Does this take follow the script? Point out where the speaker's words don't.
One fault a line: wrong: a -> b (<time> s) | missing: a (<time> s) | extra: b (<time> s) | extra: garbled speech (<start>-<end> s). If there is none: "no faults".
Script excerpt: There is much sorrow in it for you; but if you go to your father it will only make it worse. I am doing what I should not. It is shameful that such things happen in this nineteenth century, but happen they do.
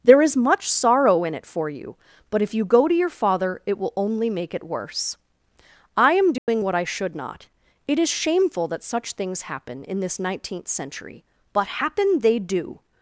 no faults